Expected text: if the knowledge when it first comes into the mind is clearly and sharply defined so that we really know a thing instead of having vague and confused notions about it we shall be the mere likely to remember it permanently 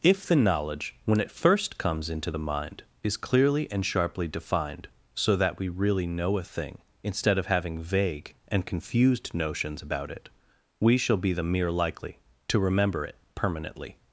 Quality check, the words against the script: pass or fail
pass